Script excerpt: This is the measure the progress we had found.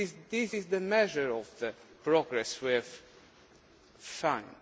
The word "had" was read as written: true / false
false